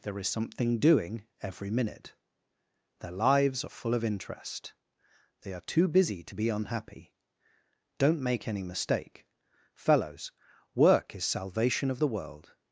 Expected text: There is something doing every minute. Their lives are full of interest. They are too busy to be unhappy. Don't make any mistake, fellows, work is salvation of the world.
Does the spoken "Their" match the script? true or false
true